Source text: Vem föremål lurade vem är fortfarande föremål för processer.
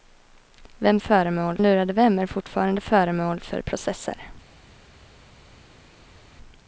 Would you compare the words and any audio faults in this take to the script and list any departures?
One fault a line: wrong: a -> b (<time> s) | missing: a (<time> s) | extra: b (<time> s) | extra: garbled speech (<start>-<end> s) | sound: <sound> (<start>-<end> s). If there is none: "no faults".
no faults